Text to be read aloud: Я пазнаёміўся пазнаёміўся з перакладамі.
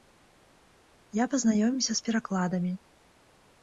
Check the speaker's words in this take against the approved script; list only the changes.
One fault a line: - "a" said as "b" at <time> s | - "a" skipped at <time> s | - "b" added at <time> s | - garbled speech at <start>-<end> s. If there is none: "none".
- "пазнаёміўся" skipped at 1.9 s